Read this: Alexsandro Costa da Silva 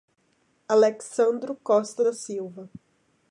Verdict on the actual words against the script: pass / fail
pass